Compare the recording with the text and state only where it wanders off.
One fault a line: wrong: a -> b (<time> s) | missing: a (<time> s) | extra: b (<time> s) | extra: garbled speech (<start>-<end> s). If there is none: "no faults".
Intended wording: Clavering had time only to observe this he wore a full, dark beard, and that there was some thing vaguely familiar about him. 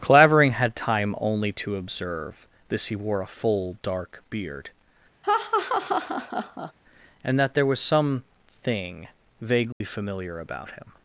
no faults